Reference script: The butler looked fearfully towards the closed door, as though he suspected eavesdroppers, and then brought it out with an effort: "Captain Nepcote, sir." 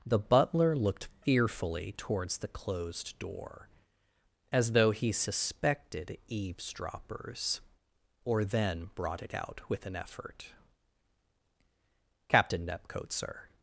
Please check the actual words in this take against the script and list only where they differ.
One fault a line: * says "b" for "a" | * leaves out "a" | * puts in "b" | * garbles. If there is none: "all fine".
* says "or" for "and"